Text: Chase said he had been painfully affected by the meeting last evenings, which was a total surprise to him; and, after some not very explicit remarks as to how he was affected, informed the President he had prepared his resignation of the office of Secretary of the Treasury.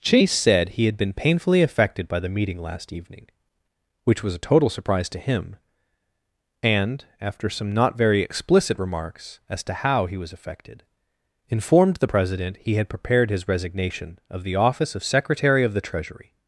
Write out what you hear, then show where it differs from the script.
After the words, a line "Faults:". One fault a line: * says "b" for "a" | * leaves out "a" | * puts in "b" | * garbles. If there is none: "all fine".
Chase said he had been painfully affected by the meeting last evening, which was a total surprise to him; and, after some not very explicit remarks as to how he was affected, informed the President he had prepared his resignation of the office of Secretary of the Treasury.
Faults:
* says "evening" for "evenings"